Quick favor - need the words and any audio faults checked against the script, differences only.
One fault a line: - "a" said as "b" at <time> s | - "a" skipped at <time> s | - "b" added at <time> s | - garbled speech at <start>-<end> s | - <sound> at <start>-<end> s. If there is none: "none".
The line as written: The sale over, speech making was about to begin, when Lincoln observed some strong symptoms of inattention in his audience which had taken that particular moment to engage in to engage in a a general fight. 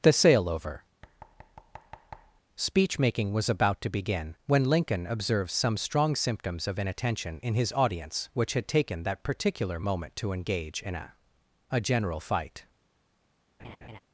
- thud at 1.0-2.4 s
- "to engage in" skipped at 10.9 s
- laugh at 13.6-14.0 s